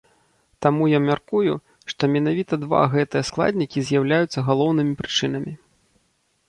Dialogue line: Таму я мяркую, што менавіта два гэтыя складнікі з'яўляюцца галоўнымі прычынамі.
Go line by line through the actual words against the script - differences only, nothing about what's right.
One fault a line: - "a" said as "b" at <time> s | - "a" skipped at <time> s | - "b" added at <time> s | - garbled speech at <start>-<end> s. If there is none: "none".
none